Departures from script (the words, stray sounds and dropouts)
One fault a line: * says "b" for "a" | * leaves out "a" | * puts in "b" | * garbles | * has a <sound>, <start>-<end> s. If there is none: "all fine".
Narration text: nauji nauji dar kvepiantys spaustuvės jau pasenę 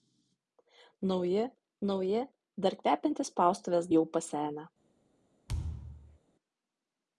* has a thud, 5.5-6.2 s